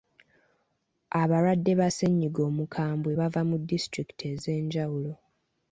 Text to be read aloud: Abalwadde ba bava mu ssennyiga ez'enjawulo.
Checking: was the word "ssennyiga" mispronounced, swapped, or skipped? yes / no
yes